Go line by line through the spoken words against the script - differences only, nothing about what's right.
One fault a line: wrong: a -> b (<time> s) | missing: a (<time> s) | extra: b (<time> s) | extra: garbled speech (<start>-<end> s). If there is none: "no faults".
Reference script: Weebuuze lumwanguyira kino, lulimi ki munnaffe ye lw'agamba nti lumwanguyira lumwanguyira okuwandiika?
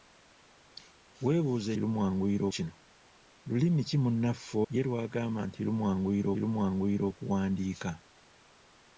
no faults